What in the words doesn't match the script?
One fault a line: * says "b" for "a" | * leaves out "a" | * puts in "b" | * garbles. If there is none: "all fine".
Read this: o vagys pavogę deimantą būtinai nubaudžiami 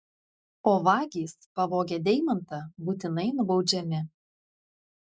all fine